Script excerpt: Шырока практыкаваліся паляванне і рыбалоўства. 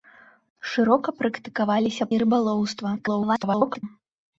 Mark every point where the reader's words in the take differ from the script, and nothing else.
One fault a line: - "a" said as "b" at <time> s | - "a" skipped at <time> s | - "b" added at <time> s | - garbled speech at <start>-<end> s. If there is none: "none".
- "паляванне" skipped at 2.1 s
- garbled speech at 3.0-3.8 s